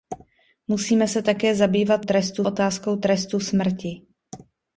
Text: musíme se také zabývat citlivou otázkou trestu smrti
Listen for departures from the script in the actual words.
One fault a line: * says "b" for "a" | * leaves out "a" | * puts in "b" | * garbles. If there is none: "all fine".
* says "trestu" for "citlivou"